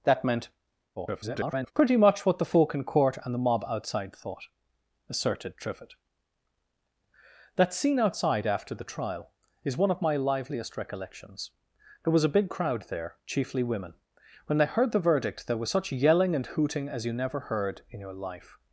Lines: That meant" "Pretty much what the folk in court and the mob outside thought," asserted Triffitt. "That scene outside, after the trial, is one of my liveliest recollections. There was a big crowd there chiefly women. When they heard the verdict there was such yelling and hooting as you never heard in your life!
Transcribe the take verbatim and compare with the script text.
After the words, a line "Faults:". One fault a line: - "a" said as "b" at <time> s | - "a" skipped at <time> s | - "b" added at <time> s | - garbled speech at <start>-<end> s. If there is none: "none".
That meant" [garbled] "Pretty much what the folk in court and the mob outside thought," asserted Triffitt. "That scene outside, after the trial, is one of my liveliest recollections. There was a big crowd there chiefly women. When they heard the verdict there was such yelling and hooting as you never heard in your life!
Faults:
- garbled speech at 0.9-1.7 s